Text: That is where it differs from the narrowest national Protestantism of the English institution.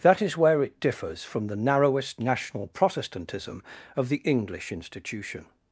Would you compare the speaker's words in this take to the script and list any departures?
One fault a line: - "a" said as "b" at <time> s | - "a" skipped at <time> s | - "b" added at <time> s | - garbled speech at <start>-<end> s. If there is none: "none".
none